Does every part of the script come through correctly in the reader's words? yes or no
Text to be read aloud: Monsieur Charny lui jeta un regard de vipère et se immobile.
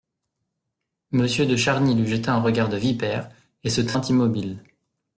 no